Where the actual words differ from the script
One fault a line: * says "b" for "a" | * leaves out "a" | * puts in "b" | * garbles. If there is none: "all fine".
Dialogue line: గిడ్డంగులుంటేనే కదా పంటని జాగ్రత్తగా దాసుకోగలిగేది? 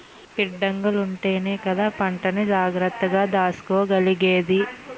all fine